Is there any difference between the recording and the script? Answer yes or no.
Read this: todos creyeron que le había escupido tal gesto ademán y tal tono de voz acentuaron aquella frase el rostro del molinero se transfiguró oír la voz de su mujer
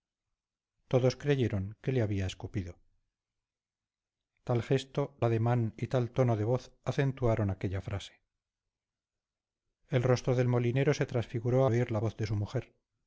no